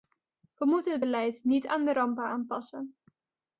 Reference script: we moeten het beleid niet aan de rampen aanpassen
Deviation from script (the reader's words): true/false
false